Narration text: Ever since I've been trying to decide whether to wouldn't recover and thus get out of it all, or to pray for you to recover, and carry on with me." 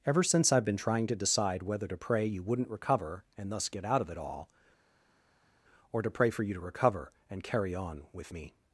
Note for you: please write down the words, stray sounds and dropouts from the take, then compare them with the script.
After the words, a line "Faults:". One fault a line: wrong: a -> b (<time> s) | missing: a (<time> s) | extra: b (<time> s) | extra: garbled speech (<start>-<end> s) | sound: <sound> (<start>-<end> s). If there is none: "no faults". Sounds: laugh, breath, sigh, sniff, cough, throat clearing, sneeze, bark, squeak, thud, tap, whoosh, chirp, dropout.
Ever since I've been trying to decide whether to pray you wouldn't recover and thus get out of it all, or to pray for you to recover, and carry on with me."
Faults:
extra: pray you (1.9 s)